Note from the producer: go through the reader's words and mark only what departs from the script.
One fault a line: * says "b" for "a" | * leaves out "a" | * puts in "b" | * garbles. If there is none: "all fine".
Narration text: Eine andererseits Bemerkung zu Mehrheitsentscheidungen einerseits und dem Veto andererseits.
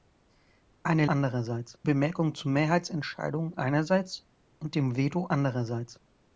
all fine